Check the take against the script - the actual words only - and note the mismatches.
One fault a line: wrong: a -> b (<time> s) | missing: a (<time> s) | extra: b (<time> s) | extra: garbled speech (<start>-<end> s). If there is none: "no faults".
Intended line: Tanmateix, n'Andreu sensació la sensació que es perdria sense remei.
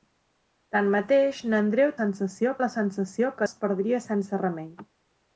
no faults